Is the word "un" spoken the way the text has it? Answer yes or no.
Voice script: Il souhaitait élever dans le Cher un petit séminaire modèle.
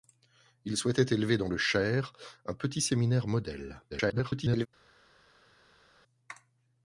yes